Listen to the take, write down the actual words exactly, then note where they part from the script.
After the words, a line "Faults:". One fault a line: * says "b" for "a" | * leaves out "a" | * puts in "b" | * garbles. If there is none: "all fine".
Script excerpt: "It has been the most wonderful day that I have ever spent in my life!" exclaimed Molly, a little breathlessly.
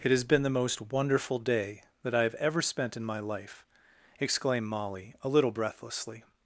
"It has been the most wonderful day that I have ever spent in my life!" exclaimed Molly, a little breathlessly.
Faults:
all fine